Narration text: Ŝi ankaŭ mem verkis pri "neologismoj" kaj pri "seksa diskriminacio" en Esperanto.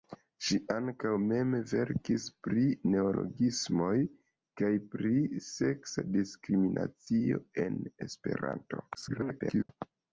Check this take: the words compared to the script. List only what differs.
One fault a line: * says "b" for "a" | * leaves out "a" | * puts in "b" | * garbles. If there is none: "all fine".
* garbles